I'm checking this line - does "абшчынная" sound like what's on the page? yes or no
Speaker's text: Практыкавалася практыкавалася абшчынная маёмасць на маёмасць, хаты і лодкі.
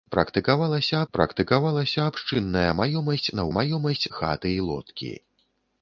yes